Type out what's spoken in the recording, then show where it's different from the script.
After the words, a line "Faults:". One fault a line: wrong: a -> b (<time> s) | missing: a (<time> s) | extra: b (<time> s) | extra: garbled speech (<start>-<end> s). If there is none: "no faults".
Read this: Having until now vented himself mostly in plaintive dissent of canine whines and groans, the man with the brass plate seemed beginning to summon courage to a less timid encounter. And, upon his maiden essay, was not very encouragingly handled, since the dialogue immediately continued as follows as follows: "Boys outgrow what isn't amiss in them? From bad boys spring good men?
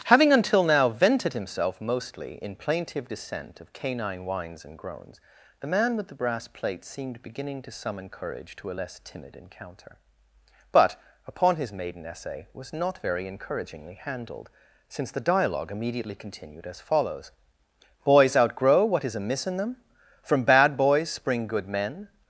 Having until now vented himself mostly in plaintive dissent of canine whines and groans, the man with the brass plate seemed beginning to summon courage to a less timid encounter. But, upon his maiden essay, was not very encouragingly handled, since the dialogue immediately continued as follows: "Boys outgrow what is amiss in them? From bad boys spring good men?
Faults:
wrong: And -> But (10.7 s)
missing: as follows (17.3 s)
wrong: isn't -> is (19.1 s)